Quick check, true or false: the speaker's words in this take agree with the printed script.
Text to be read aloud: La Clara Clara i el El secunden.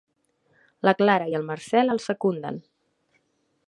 false